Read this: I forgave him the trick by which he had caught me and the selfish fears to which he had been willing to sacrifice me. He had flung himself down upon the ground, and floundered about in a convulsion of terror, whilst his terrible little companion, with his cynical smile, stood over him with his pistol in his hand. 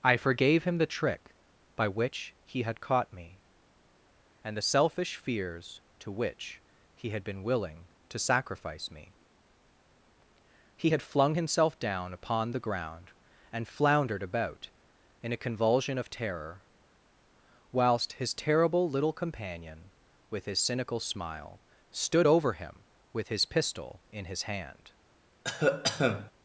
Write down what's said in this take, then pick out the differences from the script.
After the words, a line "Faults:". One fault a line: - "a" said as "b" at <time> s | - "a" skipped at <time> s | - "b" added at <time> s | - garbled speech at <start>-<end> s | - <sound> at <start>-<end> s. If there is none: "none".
I forgave him the trick by which he had caught me and the selfish fears to which he had been willing to sacrifice me. He had flung himself down upon the ground, and floundered about in a convulsion of terror, whilst his terrible little companion, with his cynical smile, stood over him with his pistol in his hand.
Faults:
- cough at 25.4-26.3 s